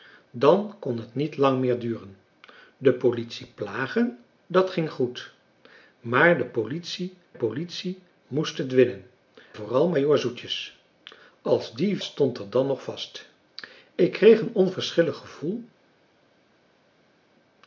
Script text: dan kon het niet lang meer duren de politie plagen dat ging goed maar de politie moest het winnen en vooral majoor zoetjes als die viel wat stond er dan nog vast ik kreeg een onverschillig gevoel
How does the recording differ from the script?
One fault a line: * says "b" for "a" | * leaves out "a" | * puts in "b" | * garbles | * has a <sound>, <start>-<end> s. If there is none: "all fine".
* puts in "politie"
* leaves out "en"
* leaves out "viel wat"